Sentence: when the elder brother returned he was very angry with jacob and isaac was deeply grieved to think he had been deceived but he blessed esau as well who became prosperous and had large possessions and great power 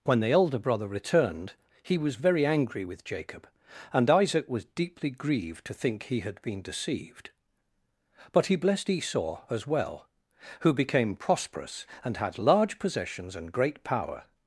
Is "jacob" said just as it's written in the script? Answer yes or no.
yes